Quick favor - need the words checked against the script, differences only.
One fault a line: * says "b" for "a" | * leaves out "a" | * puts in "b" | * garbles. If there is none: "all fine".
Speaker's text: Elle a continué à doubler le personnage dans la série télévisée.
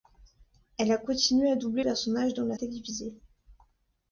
* leaves out "le"
* leaves out "série"